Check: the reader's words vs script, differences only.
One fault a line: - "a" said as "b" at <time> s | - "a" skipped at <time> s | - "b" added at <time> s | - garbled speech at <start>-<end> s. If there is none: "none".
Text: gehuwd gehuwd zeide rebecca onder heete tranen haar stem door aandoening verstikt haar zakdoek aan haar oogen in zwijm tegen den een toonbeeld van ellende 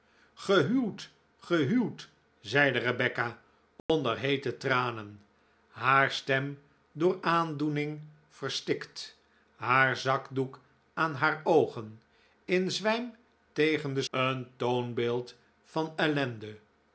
none